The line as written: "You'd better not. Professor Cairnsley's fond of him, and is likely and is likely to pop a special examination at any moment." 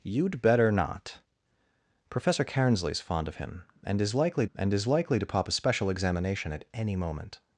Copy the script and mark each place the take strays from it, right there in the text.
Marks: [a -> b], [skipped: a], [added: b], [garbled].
"You'd better not. Professor Cairnsley's fond of him, and is likely and is likely to pop a special examination at any moment."